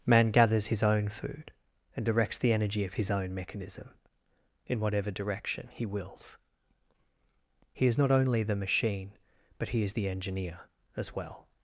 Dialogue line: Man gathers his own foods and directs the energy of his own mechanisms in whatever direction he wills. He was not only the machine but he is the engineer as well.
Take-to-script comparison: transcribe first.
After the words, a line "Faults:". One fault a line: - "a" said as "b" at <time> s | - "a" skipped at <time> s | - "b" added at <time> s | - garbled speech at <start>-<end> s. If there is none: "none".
Man gathers his own food and directs the energy of his own mechanism in whatever direction he wills. He is not only the machine but he is the engineer as well.
Faults:
- "foods" said as "food" at 1.1 s
- "mechanisms" said as "mechanism" at 3.3 s
- "was" said as "is" at 7.9 s